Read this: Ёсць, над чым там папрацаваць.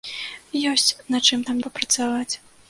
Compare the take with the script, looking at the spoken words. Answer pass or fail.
pass